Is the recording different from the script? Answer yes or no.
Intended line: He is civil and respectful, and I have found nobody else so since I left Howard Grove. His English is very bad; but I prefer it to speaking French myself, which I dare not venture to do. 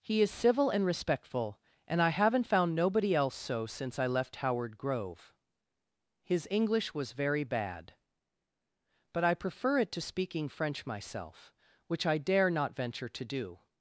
yes